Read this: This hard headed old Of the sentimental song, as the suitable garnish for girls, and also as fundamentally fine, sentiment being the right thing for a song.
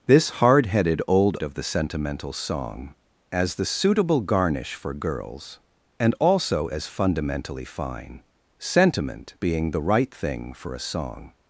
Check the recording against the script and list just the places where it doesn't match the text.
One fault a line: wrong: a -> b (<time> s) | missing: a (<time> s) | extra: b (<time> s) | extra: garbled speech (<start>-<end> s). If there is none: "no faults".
no faults